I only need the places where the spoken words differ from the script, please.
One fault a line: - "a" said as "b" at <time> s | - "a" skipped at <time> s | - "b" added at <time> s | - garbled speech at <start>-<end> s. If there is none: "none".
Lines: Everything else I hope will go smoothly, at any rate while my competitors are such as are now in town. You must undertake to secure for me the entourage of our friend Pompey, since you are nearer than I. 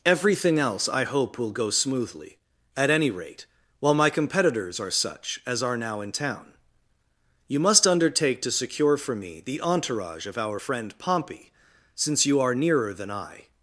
none